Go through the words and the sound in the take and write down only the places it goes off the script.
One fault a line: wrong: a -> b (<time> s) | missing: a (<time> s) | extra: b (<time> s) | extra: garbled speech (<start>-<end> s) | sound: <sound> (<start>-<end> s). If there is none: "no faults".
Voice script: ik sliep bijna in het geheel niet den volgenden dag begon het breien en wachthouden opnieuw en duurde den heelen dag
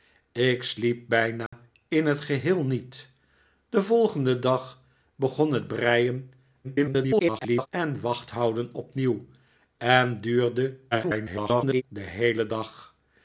sound: dropout (1.5-1.5 s)
extra: garbled speech (6.6-7.7 s)
extra: garbled speech (10.9-11.8 s)